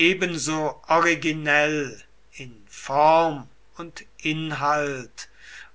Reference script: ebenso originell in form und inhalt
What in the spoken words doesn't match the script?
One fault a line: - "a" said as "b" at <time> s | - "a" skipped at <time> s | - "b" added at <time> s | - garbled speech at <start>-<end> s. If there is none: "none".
none